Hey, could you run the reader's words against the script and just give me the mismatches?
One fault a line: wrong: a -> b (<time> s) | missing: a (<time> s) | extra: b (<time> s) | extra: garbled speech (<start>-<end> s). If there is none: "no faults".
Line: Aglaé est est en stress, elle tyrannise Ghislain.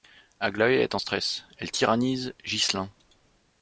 missing: est (0.9 s)